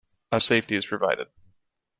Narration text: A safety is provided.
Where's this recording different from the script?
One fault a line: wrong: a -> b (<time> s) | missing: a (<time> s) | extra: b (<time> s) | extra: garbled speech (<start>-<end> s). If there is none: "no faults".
no faults